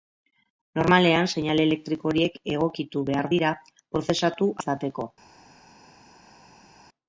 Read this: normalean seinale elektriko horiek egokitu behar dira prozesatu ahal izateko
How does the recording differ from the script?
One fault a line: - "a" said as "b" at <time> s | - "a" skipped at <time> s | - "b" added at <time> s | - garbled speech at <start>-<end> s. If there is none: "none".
- "ahal" skipped at 4.5 s